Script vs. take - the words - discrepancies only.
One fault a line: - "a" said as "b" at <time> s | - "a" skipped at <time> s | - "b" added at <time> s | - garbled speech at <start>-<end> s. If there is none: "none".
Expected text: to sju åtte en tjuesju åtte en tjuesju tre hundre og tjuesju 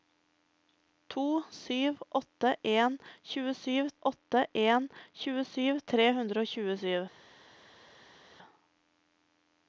none